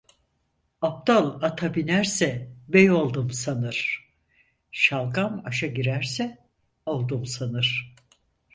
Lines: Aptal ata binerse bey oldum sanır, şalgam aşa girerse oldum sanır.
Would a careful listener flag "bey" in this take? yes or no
no